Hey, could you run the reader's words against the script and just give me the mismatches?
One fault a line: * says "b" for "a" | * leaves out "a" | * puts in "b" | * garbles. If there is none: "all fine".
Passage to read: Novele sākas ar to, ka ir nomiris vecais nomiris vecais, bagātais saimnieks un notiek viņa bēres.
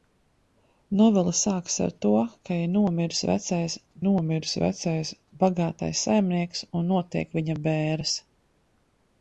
all fine